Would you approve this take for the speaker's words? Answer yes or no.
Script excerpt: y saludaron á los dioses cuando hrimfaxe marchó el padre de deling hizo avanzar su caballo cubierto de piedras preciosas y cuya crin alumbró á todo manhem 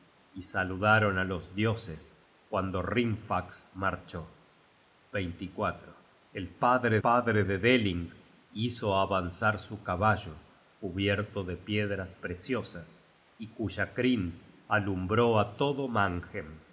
no